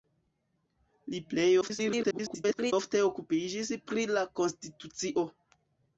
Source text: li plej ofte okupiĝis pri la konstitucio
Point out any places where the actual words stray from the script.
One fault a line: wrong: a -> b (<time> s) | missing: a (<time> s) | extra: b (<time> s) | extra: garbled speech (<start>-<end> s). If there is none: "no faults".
extra: garbled speech (1.6-2.7 s)